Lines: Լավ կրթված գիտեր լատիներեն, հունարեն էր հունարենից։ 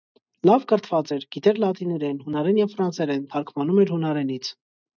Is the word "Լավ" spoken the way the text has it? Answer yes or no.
yes